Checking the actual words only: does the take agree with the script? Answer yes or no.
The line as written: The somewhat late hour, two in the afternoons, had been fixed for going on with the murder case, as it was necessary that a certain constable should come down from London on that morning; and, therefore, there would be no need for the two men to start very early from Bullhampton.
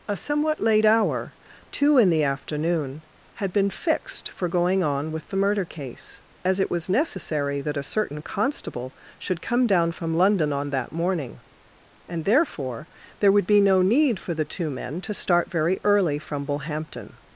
no